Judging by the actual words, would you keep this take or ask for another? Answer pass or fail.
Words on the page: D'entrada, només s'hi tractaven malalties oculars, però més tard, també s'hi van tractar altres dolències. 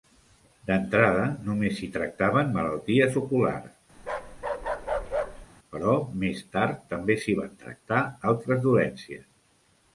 pass